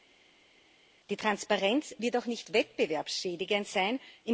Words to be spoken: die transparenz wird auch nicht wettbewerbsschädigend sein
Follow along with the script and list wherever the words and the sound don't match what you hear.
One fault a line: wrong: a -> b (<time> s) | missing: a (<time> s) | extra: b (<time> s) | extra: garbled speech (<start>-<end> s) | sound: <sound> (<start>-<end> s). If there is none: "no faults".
no faults